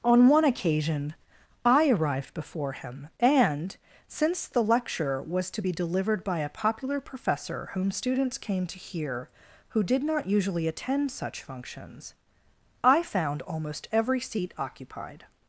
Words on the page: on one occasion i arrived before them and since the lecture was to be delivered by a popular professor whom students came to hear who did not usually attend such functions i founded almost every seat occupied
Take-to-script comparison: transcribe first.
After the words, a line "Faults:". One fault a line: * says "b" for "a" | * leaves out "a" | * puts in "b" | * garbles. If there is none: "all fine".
on one occasion i arrived before him and since the lecture was to be delivered by a popular professor whom students came to hear who did not usually attend such functions i found almost every seat occupied
Faults:
* says "him" for "them"
* says "found" for "founded"